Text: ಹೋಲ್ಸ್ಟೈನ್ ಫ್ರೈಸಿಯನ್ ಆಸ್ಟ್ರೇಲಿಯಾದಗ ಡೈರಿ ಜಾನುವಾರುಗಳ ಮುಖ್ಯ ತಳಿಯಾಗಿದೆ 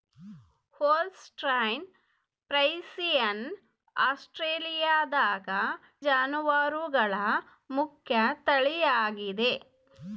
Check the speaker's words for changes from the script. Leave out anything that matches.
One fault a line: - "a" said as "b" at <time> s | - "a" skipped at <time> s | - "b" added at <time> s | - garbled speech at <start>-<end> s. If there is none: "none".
- "ಡೈರಿ" skipped at 5.5 s